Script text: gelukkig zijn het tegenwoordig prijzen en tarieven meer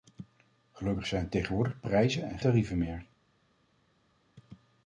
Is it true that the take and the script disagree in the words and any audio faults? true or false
false